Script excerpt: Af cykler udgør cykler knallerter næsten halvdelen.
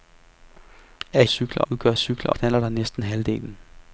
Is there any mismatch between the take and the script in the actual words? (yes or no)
no